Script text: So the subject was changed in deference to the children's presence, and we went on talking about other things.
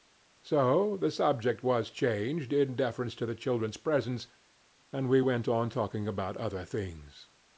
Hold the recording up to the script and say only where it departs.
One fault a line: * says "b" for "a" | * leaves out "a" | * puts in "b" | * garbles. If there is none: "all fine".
all fine